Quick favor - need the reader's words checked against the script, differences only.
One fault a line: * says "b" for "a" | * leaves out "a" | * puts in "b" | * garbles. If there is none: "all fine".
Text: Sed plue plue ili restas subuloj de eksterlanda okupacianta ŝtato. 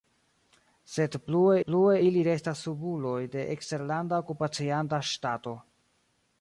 all fine